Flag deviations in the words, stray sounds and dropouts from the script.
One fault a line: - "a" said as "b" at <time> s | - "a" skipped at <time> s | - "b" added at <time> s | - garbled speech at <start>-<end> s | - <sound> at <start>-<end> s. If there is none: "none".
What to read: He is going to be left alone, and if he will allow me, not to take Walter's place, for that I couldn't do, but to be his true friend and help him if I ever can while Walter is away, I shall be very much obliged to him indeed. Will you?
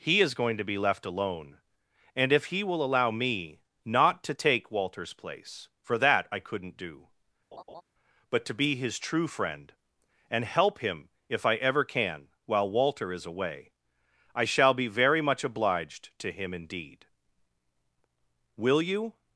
- laugh at 7.5-7.8 s